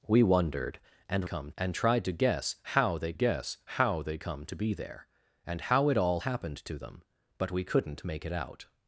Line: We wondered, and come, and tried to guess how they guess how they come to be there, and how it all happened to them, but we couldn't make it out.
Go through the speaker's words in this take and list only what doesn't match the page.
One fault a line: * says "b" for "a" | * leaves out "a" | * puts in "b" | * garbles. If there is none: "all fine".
all fine